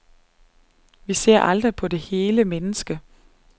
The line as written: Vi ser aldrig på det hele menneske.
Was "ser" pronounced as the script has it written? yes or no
yes